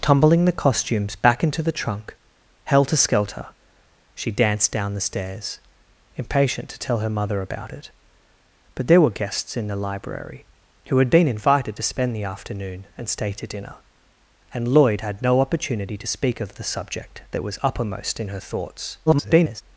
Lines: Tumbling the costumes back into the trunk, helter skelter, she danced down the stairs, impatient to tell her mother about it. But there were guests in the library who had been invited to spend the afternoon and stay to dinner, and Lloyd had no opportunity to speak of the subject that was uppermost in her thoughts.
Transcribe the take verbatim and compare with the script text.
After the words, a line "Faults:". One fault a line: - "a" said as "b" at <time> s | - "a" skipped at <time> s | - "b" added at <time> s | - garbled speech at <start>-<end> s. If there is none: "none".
Tumbling the costumes back into the trunk, helter skelter, she danced down the stairs, impatient to tell her mother about it. But there were guests in the library who had been invited to spend the afternoon and stay to dinner, and Lloyd had no opportunity to speak of the subject that was uppermost in her thoughts. [garbled]
Faults:
- garbled speech at 19.1-19.6 s